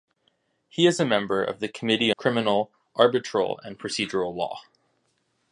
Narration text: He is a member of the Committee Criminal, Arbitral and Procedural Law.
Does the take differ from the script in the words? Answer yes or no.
no